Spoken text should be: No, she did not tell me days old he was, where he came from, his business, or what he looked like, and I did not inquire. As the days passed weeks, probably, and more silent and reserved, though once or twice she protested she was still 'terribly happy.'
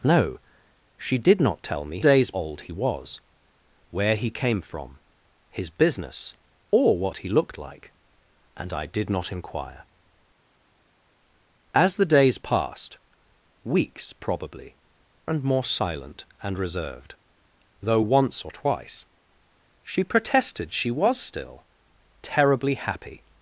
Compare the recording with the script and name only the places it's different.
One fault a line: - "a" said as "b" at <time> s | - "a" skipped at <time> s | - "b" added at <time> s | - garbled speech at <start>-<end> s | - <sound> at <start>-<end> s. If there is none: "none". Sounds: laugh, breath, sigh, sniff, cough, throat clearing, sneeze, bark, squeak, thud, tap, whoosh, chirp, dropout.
none